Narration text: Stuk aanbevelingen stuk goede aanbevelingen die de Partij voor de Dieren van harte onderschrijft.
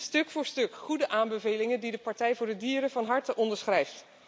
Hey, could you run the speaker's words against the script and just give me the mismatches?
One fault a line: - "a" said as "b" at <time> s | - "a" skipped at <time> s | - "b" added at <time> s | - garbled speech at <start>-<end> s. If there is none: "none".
- "aanbevelingen" said as "voor" at 0.3 s